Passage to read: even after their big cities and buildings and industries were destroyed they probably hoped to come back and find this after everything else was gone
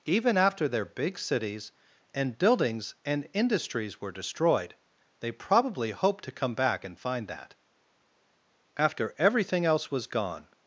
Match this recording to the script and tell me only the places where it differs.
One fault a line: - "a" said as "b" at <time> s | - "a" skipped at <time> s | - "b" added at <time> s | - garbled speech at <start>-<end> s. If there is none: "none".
- "this" said as "that" at 7.3 s